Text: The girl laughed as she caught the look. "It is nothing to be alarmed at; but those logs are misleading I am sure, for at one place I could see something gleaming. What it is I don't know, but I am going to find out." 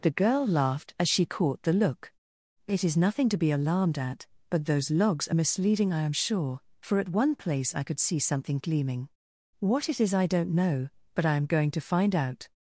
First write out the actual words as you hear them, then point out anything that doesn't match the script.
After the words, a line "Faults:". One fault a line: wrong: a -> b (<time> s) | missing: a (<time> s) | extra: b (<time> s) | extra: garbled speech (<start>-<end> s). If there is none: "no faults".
The girl laughed as she caught the look. "It is nothing to be alarmed at; but those logs are misleading I am sure, for at one place I could see something gleaming. What it is I don't know, but I am going to find out."
Faults:
no faults